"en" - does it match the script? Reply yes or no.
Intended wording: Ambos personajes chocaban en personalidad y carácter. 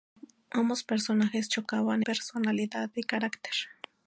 no